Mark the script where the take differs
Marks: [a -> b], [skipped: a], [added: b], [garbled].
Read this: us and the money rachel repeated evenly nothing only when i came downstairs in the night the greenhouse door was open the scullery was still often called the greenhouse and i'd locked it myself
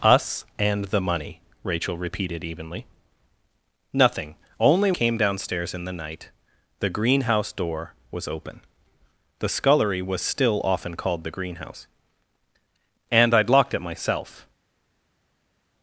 us and the money rachel repeated evenly nothing only [skipped: when i] came downstairs in the night the greenhouse door was open the scullery was still often called the greenhouse and i'd locked it myself